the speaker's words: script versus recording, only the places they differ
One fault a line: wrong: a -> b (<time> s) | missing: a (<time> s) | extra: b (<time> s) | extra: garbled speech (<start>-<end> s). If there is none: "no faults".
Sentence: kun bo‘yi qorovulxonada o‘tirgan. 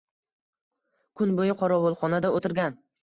no faults